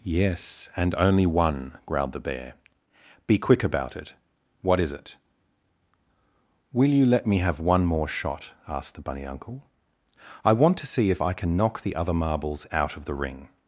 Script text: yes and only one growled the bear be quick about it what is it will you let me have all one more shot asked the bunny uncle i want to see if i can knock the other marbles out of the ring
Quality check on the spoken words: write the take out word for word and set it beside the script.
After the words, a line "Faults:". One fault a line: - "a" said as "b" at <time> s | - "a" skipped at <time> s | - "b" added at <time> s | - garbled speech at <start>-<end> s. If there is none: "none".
yes and only one growled the bear be quick about it what is it will you let me have one more shot asked the bunny uncle i want to see if i can knock the other marbles out of the ring
Faults:
- "all" skipped at 7.6 s